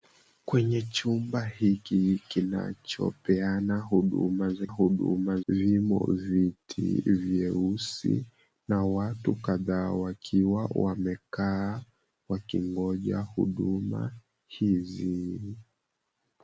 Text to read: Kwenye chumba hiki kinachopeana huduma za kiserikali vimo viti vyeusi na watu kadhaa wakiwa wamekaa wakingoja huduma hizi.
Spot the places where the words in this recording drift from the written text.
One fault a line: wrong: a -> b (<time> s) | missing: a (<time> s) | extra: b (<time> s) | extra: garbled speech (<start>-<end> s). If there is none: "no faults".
wrong: kiserikali -> huduma (4.7 s)